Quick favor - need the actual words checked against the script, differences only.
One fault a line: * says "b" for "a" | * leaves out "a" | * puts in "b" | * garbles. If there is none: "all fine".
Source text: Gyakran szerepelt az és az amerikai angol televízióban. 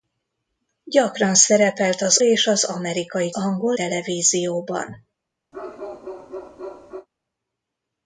all fine